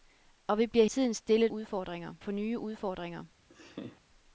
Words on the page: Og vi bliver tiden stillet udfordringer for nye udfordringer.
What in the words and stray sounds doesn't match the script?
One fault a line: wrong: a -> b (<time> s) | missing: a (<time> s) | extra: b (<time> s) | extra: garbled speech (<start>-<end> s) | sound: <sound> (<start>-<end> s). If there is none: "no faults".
sound: laugh (3.5-4.0 s)